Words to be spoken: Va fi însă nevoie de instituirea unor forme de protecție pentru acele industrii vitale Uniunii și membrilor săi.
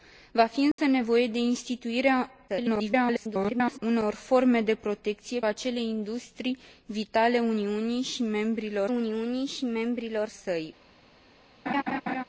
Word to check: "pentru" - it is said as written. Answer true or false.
false